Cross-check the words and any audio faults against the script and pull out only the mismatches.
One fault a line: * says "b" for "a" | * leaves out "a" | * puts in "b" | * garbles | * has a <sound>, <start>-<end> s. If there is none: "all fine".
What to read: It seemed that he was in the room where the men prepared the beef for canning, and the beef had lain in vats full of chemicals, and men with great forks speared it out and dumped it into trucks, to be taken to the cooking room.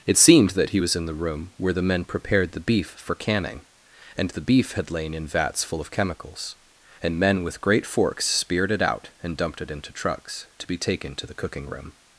all fine